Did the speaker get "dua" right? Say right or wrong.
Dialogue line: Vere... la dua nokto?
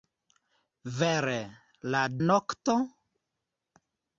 wrong